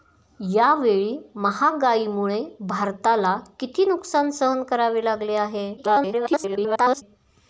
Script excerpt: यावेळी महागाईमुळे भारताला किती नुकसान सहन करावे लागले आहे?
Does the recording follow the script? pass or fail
fail